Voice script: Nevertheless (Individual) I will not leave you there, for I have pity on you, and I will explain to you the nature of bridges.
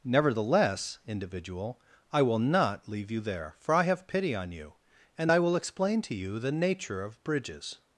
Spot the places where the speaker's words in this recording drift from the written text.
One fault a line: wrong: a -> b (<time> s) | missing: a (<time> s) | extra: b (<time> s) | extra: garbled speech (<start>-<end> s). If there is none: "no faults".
no faults